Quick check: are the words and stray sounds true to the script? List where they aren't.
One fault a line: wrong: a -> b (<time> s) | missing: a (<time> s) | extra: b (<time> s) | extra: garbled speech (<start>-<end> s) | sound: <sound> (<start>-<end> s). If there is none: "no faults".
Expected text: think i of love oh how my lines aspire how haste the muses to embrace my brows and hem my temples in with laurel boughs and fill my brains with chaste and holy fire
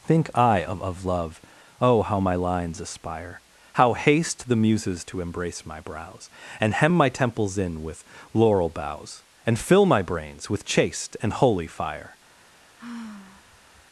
extra: of (0.8 s)
sound: sigh (12.8-13.9 s)